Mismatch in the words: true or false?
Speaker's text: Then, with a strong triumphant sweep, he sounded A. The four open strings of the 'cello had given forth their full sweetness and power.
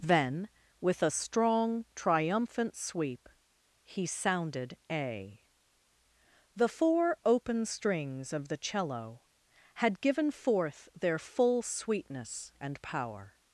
false